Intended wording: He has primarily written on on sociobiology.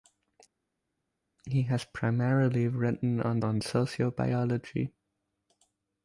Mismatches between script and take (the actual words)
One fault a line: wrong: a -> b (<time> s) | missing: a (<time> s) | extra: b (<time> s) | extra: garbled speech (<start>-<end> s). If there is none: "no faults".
no faults